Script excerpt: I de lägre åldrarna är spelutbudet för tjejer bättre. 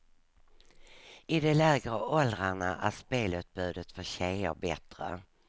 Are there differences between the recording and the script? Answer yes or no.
no